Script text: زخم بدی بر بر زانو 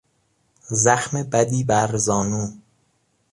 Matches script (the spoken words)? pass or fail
fail